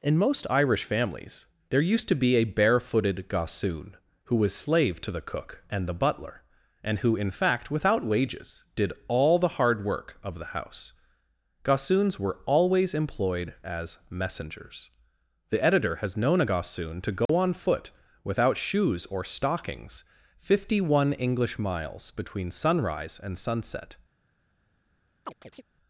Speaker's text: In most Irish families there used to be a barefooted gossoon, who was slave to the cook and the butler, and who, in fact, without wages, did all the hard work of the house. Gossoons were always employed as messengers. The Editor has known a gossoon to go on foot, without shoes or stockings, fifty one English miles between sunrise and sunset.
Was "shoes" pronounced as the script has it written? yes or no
yes